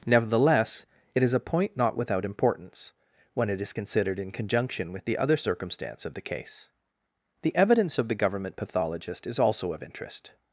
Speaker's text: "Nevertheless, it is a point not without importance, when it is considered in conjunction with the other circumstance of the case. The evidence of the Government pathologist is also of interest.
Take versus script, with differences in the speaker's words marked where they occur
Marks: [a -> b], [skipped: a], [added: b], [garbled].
"Nevertheless, it is a point not without importance, when it is considered in conjunction with the other circumstance of the case. The evidence of the Government pathologist is also of interest.